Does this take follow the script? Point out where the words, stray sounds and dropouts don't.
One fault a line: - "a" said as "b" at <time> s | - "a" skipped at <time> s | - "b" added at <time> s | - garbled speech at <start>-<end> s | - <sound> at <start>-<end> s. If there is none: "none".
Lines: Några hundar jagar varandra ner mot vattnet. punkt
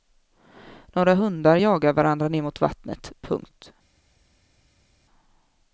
none